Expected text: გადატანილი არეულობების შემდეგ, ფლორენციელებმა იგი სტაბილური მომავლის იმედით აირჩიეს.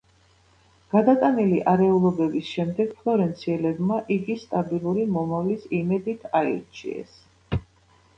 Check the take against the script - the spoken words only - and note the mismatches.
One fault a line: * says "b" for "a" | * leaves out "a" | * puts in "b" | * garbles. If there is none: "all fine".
all fine